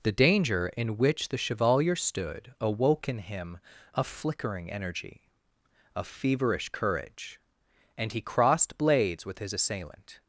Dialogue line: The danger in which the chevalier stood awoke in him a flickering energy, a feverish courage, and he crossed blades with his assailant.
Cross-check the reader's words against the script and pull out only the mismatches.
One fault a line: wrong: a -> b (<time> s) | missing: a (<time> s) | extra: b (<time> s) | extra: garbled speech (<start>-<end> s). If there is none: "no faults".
no faults